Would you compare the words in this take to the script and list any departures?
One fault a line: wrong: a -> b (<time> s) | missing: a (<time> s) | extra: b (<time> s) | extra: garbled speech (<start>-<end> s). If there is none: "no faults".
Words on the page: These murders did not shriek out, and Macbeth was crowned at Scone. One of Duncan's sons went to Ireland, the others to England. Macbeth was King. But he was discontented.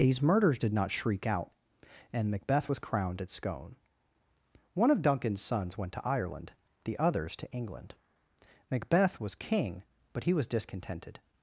no faults